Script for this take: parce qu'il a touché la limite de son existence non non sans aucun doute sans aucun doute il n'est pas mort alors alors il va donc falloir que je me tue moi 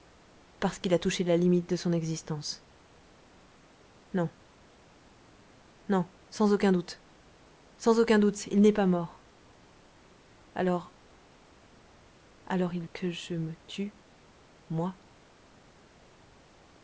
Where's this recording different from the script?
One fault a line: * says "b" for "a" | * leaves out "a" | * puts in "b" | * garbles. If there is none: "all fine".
* leaves out "va donc falloir"